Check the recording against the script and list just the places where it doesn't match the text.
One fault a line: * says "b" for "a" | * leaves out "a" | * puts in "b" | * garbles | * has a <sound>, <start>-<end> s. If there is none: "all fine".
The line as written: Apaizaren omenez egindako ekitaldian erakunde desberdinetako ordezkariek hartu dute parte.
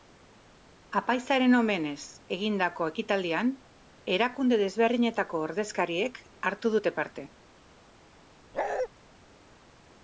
* has a bark, 8.5-8.9 s